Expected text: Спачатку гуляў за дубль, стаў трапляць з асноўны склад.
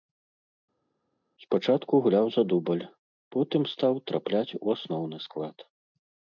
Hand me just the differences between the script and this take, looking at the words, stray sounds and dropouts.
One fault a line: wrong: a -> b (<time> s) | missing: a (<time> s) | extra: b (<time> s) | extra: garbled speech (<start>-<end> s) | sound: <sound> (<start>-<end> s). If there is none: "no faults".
extra: потым (3.4 s)
wrong: з -> у (4.6 s)